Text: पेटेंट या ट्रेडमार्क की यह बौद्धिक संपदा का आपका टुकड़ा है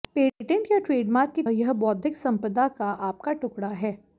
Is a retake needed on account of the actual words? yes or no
no